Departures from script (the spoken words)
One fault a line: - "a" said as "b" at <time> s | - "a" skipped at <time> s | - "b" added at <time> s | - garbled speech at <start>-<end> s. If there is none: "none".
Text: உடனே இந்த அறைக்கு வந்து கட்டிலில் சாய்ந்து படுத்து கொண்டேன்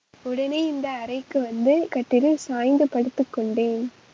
none